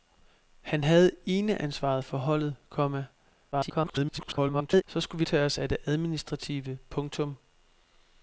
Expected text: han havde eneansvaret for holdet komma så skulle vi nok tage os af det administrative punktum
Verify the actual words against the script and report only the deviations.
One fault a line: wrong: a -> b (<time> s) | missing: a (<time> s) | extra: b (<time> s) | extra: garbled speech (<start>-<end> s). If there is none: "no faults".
extra: garbled speech (3.5-4.8 s)
missing: nok (5.2 s)